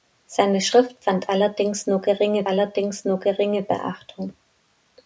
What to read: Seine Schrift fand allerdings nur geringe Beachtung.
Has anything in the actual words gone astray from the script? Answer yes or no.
yes